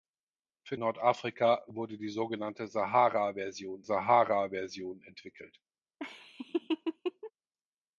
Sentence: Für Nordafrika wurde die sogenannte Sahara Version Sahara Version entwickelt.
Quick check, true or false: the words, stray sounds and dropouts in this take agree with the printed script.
false